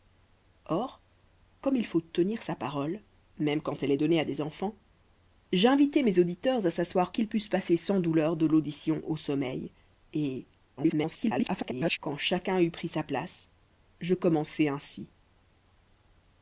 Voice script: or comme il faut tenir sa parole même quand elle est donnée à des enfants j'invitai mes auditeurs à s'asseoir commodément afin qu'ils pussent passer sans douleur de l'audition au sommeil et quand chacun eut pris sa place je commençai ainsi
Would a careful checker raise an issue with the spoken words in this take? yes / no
yes